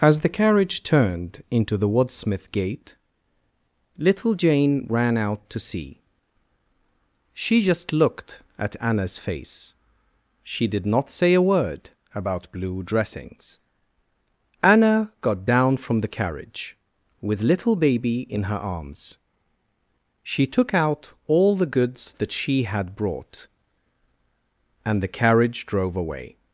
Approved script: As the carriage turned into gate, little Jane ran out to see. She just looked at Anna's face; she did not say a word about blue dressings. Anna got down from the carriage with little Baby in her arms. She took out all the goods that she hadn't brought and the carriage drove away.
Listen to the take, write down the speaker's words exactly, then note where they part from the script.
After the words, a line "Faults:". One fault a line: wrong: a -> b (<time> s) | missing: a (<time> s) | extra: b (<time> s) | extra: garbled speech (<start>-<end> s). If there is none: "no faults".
As the carriage turned into the Wadsmith gate, little Jane ran out to see. She just looked at Anna's face; she did not say a word about blue dressings. Anna got down from the carriage with little Baby in her arms. She took out all the goods that she had brought and the carriage drove away.
Faults:
extra: the Wadsmith (1.8 s)
wrong: hadn't -> had (22.6 s)